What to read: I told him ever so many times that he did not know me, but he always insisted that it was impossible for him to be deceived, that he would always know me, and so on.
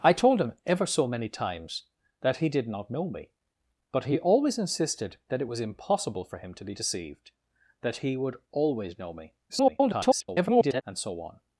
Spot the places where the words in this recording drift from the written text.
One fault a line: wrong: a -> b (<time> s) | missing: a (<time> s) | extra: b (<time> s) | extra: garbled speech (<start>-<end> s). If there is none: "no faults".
extra: garbled speech (9.5-10.8 s)